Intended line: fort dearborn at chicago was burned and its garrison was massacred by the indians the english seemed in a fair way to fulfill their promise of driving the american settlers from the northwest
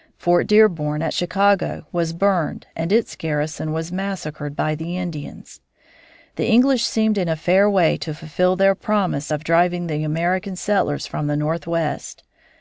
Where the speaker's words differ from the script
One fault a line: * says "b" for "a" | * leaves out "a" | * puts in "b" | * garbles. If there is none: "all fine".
all fine